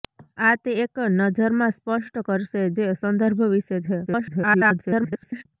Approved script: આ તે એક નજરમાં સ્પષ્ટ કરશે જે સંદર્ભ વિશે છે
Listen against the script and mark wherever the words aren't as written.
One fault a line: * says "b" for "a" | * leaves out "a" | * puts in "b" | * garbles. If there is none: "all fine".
* garbles